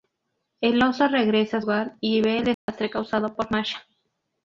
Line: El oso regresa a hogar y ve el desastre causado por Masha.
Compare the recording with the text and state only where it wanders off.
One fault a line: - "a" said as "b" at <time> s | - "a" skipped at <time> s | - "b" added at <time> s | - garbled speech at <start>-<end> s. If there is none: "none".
none